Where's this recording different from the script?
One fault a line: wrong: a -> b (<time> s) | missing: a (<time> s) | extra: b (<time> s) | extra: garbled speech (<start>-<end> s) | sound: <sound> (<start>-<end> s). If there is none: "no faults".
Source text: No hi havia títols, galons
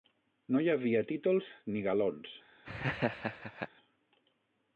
extra: ni (1.8 s)
sound: laugh (2.6-3.7 s)